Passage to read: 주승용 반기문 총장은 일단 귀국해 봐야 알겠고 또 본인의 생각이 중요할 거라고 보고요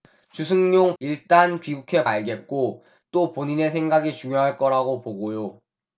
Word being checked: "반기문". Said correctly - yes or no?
no